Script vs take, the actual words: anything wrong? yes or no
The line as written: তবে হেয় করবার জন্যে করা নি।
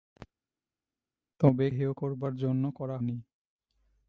no